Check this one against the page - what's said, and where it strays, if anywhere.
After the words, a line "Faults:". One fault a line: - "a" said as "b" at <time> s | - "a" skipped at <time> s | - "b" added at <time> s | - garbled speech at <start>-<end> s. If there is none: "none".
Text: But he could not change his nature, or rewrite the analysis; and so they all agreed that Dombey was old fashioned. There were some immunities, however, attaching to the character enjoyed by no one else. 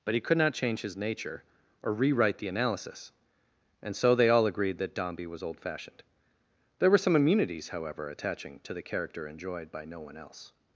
But he could not change his nature, or rewrite the analysis; and so they all agreed that Dombey was old fashioned. There were some immunities, however, attaching to the character enjoyed by no one else.
Faults:
none